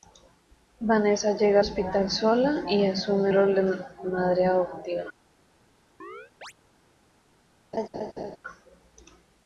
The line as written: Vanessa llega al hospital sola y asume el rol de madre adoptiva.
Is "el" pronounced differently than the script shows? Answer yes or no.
yes